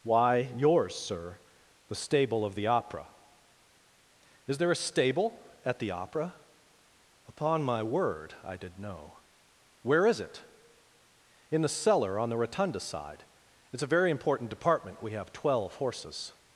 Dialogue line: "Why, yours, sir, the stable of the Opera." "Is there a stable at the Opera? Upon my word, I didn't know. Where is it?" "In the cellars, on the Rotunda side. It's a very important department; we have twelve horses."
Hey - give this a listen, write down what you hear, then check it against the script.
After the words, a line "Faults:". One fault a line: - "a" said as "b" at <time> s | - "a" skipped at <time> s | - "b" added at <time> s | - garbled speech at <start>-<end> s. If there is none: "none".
"Why, yours, sir, the stable of the Opera." "Is there a stable at the Opera? Upon my word, I did know. Where is it?" "In the cellar, on the Rotunda side. It's a very important department; we have twelve horses."
Faults:
- "didn't" said as "did" at 8.6 s
- "cellars" said as "cellar" at 11.7 s